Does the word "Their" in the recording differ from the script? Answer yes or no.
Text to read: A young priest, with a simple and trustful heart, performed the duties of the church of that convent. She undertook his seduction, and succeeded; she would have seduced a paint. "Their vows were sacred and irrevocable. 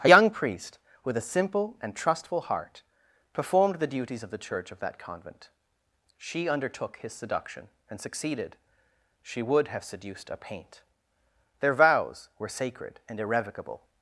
no